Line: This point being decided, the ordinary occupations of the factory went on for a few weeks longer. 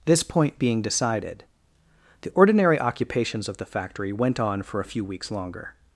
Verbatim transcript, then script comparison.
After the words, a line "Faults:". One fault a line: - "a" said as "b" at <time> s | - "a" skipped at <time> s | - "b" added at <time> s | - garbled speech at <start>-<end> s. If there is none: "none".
This point being decided, the ordinary occupations of the factory went on for a few weeks longer.
Faults:
none